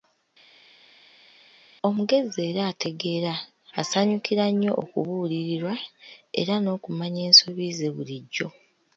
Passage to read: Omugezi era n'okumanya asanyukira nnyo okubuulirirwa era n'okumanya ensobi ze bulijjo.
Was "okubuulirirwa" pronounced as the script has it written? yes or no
yes